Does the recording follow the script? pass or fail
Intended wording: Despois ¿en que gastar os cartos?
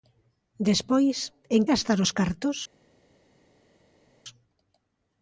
fail